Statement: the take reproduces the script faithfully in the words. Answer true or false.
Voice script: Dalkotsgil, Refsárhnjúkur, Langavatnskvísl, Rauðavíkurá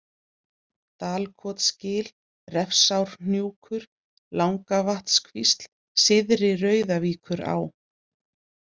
false